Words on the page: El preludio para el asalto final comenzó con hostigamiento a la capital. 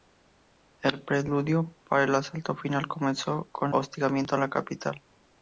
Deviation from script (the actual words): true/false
false